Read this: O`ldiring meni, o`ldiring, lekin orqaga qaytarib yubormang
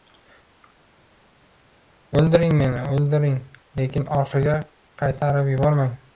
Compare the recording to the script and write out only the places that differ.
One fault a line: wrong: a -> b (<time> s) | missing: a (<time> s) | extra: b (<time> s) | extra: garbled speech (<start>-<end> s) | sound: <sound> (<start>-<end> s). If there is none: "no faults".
no faults